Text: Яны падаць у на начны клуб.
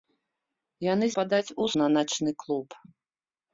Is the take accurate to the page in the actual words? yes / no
yes